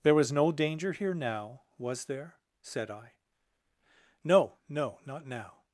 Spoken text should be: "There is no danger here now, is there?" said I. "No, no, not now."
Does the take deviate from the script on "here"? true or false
false